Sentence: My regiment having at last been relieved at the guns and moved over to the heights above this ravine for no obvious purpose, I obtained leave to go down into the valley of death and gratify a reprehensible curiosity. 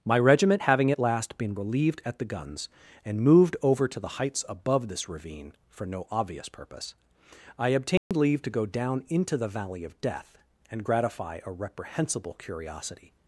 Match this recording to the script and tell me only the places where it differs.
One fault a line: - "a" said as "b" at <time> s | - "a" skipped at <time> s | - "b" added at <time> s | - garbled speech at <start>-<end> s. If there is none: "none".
none